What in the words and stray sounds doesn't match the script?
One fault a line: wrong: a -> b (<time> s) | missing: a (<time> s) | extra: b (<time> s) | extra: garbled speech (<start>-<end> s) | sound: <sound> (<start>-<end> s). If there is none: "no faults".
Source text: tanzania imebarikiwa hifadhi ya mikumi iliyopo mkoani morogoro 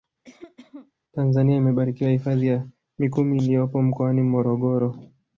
sound: cough (0.2-0.9 s)